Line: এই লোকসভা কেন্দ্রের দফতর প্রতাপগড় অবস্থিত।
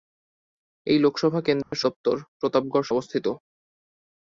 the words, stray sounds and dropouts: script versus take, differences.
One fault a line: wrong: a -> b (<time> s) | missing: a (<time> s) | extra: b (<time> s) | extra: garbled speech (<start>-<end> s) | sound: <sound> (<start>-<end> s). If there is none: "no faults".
sound: dropout (1.6-1.7 s)